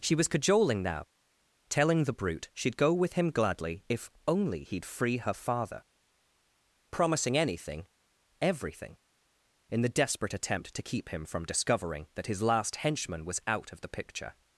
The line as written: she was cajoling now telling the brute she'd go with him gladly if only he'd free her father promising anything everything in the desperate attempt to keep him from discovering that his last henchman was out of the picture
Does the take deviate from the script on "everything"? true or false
false